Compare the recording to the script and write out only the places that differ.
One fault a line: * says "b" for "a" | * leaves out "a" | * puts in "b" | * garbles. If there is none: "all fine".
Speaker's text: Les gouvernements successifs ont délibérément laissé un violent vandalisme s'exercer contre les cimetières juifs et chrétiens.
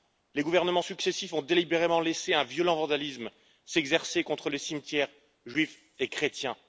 all fine